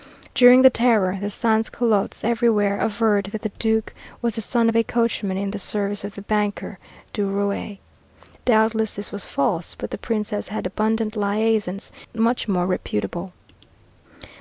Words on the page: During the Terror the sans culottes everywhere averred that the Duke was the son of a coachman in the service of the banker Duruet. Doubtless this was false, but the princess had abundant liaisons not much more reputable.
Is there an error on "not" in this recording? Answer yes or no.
yes